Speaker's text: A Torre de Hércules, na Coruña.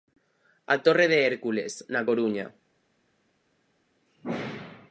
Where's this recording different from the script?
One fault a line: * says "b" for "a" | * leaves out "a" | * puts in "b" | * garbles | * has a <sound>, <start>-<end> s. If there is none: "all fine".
all fine